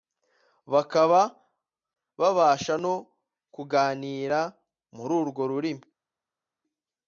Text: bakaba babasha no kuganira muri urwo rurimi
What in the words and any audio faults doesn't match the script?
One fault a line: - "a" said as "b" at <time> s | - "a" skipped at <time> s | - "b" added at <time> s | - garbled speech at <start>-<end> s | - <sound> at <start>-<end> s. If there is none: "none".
none